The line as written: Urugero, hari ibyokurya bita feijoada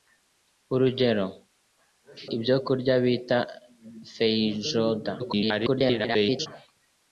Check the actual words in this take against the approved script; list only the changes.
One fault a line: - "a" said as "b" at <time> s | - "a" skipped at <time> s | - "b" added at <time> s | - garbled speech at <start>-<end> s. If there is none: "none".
- "hari" skipped at 1.2 s
- garbled speech at 5.2-6.5 s